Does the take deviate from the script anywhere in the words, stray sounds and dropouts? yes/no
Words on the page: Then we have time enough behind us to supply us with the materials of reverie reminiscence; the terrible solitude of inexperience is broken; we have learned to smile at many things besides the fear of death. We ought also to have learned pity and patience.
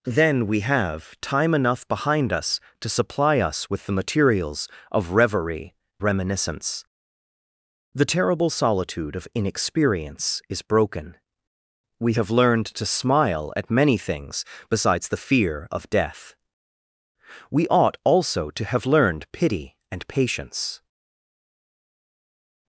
no